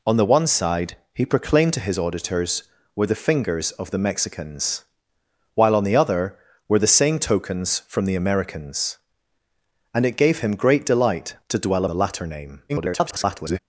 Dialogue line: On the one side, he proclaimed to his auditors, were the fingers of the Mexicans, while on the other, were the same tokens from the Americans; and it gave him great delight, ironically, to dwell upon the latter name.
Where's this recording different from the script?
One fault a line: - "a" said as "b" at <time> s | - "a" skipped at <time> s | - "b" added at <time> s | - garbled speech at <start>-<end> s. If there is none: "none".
- "ironically" skipped at 11.3 s
- "upon" skipped at 11.9 s
- garbled speech at 12.7-13.6 s